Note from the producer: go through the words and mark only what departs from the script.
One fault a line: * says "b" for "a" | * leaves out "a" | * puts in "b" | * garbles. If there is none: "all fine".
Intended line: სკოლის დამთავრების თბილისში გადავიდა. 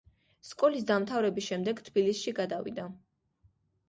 * puts in "შემდეგ"